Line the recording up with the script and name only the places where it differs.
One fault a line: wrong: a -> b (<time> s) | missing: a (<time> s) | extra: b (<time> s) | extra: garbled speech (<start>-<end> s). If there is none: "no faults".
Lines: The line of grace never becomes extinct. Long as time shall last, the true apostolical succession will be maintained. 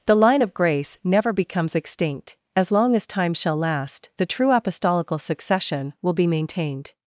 extra: As (2.6 s)